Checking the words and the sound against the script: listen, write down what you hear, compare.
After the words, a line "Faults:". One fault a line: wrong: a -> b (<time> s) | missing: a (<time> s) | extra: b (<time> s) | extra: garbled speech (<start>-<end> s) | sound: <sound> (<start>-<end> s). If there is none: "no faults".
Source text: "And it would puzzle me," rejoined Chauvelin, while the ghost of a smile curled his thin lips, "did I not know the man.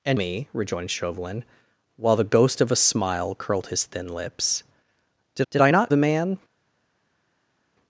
"And me," rejoined Chauvelin, while the ghost of a smile curled his thin lips, "did did I not the man.
Faults:
missing: it would puzzle (0.2 s)
extra: did (5.5 s)
missing: know (5.9 s)